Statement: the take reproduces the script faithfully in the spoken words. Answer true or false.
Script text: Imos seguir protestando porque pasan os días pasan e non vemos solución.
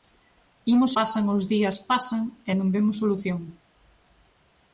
false